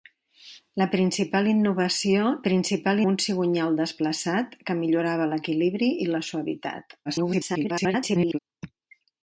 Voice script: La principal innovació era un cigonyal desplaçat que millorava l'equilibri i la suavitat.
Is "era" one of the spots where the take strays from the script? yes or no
yes